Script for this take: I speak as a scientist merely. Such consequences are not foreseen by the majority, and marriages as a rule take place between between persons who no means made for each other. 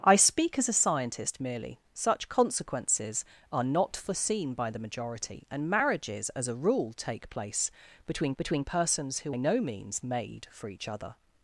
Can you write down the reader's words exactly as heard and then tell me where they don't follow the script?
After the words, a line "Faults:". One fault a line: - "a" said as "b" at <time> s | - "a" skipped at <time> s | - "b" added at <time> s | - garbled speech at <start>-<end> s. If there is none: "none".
I speak as a scientist merely. Such consequences are not foreseen by the majority, and marriages as a rule take place between between persons who no means made for each other.
Faults:
none